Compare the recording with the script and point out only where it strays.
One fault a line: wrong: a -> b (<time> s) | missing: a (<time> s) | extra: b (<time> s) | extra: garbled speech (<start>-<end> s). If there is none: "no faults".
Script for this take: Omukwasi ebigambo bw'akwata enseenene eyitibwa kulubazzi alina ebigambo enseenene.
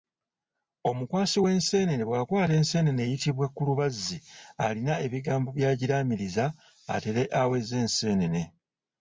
wrong: ebigambo -> w'enseenene (1.4 s)
extra: byagiraamiriza atere aweze (5.6 s)